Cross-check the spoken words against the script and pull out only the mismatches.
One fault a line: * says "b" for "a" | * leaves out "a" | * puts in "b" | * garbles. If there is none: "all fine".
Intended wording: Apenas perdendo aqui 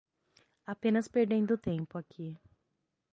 * puts in "tempo"